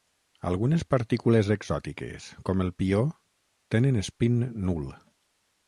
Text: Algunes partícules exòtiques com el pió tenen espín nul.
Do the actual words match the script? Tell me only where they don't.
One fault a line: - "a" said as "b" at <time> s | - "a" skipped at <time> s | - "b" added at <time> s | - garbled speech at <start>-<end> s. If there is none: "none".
none